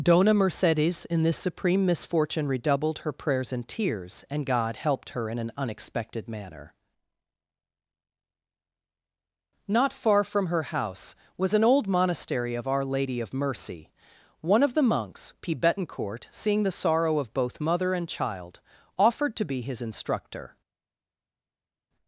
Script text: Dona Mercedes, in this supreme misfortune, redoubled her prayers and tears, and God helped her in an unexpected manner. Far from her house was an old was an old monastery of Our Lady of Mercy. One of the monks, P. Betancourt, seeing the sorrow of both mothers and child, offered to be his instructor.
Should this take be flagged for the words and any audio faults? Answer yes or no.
yes